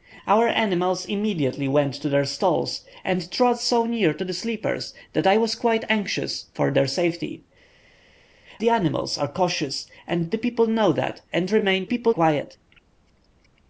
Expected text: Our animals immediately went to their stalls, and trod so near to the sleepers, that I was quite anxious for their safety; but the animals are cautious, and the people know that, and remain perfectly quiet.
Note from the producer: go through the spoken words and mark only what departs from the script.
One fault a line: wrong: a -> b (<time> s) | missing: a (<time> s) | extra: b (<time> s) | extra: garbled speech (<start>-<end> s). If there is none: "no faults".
missing: but (7.4 s)
wrong: perfectly -> people (11.8 s)